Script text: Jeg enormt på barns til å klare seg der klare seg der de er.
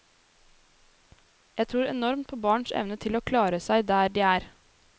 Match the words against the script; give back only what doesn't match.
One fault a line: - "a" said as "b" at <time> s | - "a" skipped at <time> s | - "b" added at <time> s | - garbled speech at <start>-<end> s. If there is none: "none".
- "tror" added at 1.7 s
- "evne" added at 2.8 s
- "klare seg der" skipped at 4.1 s